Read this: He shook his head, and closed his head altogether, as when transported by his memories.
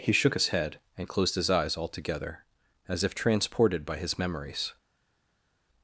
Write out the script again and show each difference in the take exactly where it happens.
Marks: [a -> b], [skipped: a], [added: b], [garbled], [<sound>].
He shook his head, and closed his [head -> eyes] altogether, as [when -> if] transported by his memories.